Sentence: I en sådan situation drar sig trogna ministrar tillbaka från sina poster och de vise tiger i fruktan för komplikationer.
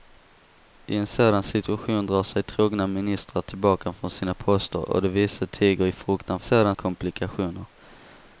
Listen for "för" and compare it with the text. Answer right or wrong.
wrong